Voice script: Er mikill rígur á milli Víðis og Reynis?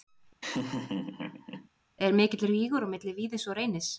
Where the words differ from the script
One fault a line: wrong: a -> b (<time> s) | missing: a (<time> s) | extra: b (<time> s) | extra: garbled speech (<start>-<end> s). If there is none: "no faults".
no faults